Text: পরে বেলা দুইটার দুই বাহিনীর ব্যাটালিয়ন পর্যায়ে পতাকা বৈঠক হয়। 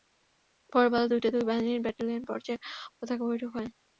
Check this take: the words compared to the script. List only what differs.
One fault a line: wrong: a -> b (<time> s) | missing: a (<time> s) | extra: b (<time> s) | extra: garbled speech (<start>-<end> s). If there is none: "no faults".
no faults